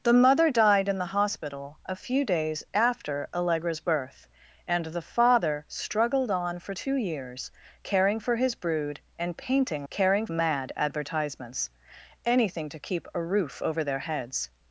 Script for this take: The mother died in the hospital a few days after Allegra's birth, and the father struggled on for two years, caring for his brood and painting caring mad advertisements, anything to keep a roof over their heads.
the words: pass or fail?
pass